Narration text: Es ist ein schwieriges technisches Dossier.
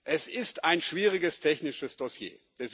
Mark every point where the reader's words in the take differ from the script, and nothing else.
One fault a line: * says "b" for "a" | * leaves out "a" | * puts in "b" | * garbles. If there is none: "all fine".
all fine